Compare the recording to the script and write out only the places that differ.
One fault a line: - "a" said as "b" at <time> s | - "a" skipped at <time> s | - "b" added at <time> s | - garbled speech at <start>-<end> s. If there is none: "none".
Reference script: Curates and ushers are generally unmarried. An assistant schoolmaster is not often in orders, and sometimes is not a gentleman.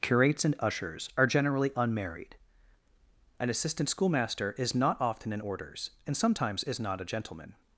none